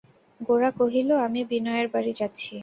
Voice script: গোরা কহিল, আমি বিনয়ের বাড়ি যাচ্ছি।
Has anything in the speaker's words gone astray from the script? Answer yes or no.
no